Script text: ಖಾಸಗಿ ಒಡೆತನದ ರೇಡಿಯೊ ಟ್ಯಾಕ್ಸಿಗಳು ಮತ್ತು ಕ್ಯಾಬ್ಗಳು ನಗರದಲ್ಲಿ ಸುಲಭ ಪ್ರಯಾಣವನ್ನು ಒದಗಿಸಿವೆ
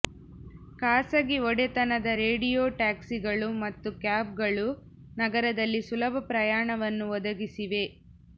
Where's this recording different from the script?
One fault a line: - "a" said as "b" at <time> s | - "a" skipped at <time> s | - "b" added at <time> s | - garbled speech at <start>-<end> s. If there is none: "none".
none